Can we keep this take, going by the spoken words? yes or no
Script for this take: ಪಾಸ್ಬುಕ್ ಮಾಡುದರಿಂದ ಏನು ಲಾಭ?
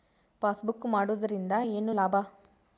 yes